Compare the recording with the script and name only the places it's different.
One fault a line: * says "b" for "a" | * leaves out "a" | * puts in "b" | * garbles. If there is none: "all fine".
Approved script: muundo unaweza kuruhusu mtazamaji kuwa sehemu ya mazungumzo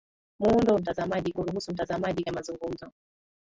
* says "mtazamaji" for "unaweza"
* leaves out "kuwa sehemu"